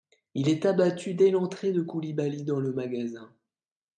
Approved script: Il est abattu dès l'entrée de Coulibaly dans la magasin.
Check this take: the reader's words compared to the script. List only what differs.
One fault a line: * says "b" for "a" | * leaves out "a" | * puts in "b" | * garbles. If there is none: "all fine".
* says "le" for "la"